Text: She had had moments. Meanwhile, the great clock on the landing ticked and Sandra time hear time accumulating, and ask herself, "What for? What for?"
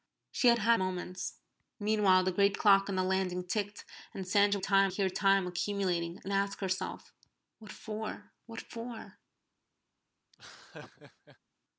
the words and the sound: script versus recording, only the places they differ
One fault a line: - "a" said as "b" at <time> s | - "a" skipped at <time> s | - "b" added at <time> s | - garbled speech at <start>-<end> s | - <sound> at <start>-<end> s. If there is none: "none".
- laugh at 10.3-11.4 s